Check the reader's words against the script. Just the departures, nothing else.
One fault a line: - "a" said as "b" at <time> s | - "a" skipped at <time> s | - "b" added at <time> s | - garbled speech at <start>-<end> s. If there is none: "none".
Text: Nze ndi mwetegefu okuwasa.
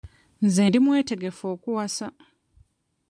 none